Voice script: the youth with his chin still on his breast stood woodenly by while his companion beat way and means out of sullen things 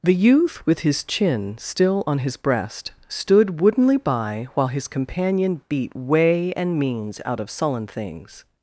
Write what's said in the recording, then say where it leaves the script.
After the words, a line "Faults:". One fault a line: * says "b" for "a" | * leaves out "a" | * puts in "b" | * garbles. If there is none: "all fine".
the youth with his chin still on his breast stood woodenly by while his companion beat way and means out of sullen things
Faults:
all fine